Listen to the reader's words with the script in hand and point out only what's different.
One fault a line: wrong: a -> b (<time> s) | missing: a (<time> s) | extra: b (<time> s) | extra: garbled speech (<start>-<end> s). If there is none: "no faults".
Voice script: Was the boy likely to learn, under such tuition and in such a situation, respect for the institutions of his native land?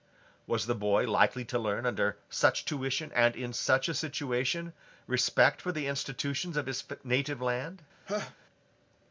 no faults